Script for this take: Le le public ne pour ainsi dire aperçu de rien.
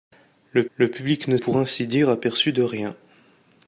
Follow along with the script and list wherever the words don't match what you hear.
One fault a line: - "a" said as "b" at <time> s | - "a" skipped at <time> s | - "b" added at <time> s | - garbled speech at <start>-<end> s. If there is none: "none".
none